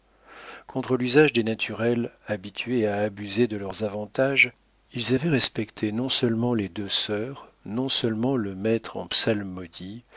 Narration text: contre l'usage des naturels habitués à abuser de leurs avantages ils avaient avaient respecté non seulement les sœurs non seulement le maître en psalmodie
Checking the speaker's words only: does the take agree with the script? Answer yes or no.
no